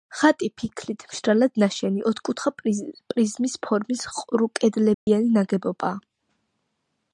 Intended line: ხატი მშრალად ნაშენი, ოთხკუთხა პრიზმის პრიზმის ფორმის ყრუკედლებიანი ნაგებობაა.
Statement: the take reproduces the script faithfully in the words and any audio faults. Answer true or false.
false